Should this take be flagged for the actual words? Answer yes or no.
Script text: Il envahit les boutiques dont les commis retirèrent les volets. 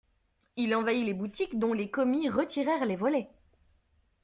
no